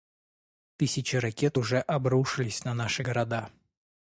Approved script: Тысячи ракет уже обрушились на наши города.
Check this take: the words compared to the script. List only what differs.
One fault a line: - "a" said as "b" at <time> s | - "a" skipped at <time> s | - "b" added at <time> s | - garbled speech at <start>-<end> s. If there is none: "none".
none